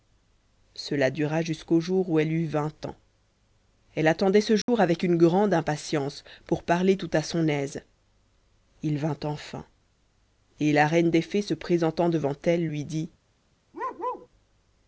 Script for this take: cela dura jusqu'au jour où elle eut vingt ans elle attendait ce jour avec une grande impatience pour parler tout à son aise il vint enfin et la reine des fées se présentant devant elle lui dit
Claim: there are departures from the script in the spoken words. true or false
false